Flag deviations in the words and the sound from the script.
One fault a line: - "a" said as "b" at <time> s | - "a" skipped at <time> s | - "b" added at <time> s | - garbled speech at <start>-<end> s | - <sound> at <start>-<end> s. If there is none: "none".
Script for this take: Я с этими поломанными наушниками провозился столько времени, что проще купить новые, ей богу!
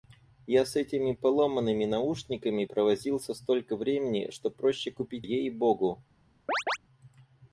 - "новые" skipped at 5.3 s
- chirp at 6.5-6.8 s